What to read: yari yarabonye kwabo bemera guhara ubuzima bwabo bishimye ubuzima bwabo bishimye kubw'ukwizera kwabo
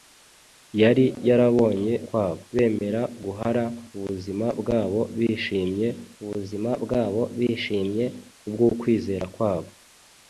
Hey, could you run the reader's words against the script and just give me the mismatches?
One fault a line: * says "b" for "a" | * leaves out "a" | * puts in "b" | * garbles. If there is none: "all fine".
all fine